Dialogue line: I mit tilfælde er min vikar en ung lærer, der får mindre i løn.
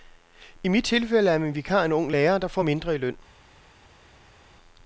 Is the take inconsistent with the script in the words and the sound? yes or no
no